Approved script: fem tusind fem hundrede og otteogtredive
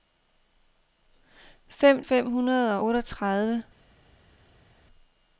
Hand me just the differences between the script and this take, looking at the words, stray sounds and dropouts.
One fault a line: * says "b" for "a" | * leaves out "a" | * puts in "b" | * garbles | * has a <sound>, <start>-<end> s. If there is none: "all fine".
* leaves out "tusind"
* leaves out "og"